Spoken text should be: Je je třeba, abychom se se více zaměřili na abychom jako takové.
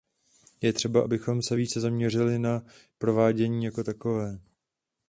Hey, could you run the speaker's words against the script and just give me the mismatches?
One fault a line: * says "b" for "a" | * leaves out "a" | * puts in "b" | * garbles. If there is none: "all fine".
* leaves out "je"
* leaves out "se"
* says "provádění" for "abychom"